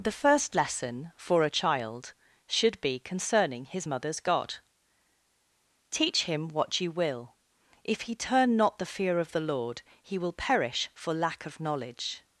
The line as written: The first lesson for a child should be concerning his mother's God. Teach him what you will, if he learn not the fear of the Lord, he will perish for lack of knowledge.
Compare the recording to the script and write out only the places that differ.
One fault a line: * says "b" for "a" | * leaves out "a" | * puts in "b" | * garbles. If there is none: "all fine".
* says "turn" for "learn"